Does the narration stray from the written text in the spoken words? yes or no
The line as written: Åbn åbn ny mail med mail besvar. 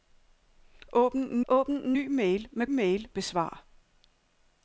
no